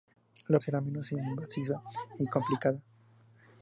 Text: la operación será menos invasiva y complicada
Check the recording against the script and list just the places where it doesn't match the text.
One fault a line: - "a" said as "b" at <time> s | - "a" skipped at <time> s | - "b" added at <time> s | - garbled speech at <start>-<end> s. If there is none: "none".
- "operación" skipped at 0.6 s